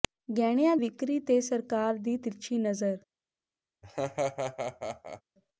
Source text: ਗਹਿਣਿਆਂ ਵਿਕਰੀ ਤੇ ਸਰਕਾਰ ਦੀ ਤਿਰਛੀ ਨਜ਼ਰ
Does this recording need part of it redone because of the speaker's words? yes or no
no